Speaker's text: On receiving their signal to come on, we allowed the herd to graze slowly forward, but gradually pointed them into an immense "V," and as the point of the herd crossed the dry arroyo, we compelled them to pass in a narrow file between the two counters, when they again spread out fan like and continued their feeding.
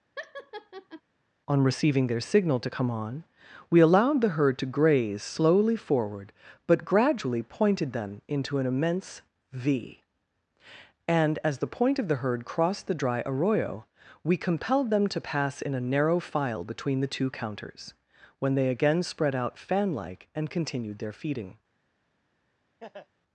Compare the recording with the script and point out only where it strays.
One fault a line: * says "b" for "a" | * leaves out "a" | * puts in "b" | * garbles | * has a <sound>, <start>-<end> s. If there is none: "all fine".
* has a laugh, 0.2-1.0 s
* has a laugh, 22.8-23.1 s